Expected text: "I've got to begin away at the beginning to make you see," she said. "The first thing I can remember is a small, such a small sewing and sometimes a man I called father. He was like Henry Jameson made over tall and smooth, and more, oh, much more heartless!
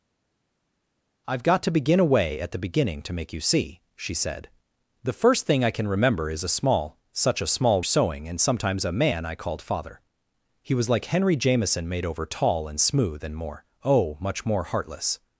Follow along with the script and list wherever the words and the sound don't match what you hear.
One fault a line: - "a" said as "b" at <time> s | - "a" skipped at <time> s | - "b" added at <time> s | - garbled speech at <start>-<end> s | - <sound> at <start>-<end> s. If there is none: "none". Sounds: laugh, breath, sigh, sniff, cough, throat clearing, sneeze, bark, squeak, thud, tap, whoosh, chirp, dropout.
none